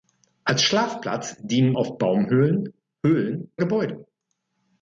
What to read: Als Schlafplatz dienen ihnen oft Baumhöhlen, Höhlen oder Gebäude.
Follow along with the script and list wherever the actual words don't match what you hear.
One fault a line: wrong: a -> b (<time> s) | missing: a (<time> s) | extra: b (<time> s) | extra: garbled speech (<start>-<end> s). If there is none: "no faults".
missing: ihnen (1.7 s)
missing: oder (3.5 s)